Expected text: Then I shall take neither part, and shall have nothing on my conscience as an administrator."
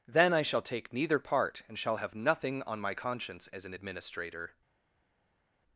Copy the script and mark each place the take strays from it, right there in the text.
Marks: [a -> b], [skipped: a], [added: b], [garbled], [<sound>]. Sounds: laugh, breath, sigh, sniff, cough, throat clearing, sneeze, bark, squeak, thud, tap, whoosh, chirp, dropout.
Then I shall take neither part, and shall have nothing on my conscience as an administrator."